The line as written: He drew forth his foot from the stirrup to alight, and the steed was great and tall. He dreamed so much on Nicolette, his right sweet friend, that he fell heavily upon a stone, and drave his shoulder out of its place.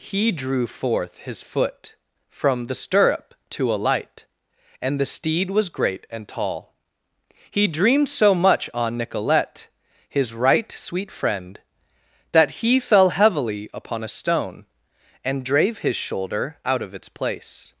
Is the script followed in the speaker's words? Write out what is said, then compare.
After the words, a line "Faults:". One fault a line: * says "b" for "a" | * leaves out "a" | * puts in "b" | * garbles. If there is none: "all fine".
He drew forth his foot from the stirrup to alight, and the steed was great and tall. He dreamed so much on Nicolette, his right sweet friend, that he fell heavily upon a stone, and drave his shoulder out of its place.
Faults:
all fine